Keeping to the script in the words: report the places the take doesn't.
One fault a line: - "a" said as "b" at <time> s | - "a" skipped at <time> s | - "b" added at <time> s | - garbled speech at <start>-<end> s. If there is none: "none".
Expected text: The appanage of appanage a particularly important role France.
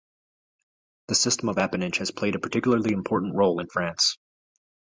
- "appanage" said as "system" at 1.1 s
- "has played" added at 2.0 s
- "in" added at 3.6 s